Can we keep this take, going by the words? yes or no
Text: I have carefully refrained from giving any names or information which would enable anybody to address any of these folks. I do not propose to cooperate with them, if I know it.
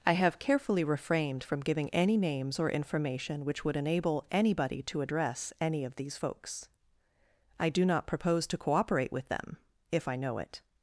yes